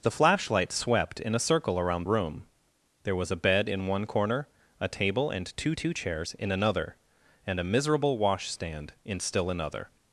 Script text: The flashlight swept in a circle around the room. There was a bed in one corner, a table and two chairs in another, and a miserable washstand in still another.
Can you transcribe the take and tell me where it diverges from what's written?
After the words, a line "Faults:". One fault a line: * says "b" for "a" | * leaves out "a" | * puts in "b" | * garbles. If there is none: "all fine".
The flashlight swept in a circle around room. There was a bed in one corner, a table and two two chairs in another, and a miserable washstand in still another.
Faults:
* leaves out "the"
* puts in "two"